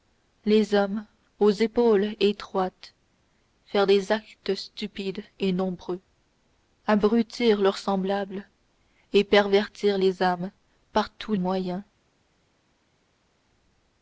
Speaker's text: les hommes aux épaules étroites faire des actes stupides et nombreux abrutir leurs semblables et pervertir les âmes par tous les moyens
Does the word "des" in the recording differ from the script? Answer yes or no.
no